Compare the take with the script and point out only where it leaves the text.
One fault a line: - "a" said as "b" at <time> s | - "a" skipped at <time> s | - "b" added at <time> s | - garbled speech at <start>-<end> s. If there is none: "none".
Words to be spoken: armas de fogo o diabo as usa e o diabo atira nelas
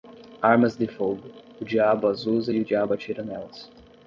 none